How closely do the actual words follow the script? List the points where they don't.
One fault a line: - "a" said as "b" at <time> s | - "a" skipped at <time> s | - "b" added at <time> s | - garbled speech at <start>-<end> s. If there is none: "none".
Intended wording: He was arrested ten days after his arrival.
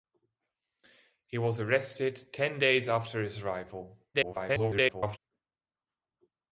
- garbled speech at 4.1-5.2 s